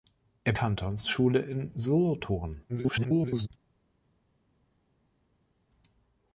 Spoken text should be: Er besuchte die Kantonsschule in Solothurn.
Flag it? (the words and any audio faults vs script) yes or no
yes